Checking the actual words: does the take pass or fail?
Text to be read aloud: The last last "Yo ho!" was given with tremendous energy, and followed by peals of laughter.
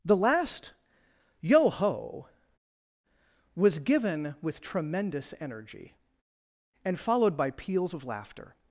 fail